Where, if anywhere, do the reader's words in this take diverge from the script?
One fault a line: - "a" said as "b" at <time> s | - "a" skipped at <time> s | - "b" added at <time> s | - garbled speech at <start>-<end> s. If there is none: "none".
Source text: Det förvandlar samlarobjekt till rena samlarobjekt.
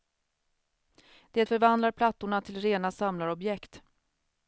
- "samlarobjekt" said as "plattorna" at 1.9 s